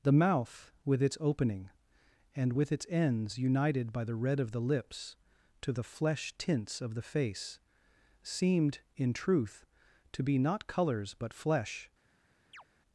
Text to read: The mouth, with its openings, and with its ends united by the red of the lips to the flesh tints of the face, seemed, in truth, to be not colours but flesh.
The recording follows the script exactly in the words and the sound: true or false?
false